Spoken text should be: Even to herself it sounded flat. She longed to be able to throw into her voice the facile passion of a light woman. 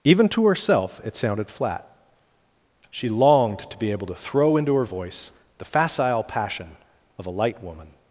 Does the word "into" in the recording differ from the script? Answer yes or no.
no